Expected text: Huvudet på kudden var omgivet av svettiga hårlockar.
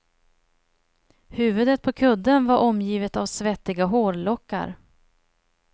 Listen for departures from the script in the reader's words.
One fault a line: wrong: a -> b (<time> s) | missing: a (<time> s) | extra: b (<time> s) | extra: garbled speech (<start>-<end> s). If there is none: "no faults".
no faults